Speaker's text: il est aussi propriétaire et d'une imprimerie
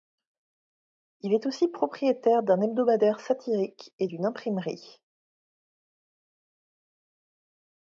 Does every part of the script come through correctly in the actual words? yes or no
no